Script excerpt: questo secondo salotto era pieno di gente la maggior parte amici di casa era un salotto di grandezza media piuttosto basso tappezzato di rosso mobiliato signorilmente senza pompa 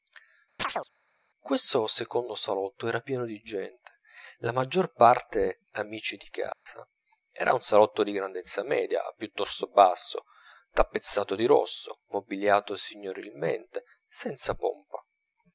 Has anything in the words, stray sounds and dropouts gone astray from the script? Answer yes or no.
yes